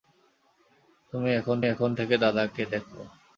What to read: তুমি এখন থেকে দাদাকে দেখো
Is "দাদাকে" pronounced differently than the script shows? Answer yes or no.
no